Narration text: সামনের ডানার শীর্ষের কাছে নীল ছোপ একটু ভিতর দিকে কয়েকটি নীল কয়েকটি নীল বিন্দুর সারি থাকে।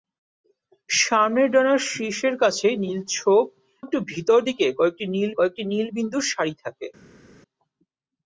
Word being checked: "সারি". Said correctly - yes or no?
yes